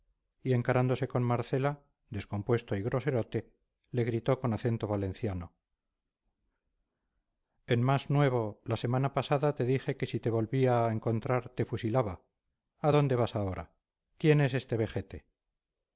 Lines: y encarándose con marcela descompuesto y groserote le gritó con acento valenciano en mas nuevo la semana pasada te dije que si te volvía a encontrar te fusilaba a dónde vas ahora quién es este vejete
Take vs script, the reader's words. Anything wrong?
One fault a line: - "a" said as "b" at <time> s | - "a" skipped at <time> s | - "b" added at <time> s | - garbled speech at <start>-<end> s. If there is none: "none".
none